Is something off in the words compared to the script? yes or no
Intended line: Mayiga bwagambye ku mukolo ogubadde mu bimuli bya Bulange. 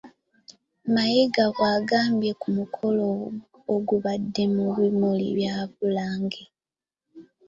no